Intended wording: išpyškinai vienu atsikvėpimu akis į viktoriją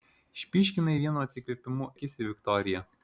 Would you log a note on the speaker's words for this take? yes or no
no